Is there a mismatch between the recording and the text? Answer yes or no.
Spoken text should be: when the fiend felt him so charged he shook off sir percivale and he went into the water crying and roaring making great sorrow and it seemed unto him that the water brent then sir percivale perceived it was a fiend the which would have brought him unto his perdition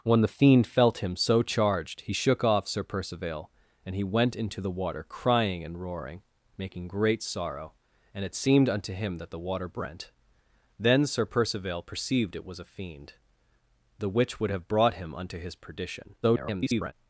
yes